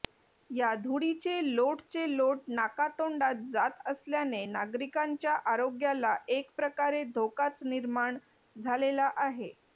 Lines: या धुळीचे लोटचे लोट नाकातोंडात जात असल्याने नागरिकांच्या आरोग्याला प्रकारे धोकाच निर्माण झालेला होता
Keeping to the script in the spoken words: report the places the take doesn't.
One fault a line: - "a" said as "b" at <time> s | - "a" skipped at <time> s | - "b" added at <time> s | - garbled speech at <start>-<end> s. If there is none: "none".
- "एक" added at 6.3 s
- "होता" said as "आहे" at 9.2 s